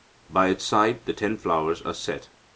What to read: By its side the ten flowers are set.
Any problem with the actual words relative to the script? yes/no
no